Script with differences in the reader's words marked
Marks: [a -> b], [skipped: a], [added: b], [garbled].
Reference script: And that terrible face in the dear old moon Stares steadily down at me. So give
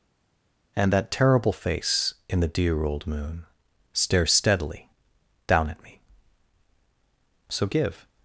And that terrible face in the dear old moon Stares steadily down at me. So give